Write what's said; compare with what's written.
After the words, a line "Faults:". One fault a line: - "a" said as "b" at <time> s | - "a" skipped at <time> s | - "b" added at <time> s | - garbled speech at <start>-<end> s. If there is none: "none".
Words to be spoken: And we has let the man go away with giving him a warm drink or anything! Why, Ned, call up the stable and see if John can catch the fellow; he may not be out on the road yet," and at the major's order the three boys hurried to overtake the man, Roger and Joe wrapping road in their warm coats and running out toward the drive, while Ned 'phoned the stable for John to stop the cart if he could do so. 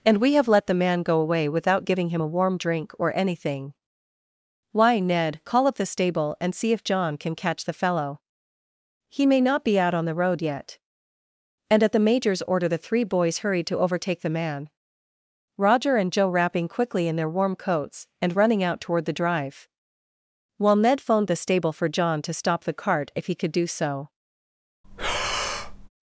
And we have let the man go away without giving him a warm drink or anything! Why, Ned, call up the stable and see if John can catch the fellow; he may not be out on the road yet," and at the major's order the three boys hurried to overtake the man, Roger and Joe wrapping quickly in their warm coats and running out toward the drive, while Ned 'phoned the stable for John to stop the cart if he could do so.
Faults:
- "has" said as "have" at 0.3 s
- "with" said as "without" at 1.5 s
- "road" said as "quickly" at 16.7 s